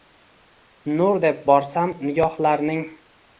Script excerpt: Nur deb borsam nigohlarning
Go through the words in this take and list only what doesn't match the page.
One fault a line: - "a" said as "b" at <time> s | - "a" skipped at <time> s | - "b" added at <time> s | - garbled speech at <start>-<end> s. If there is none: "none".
none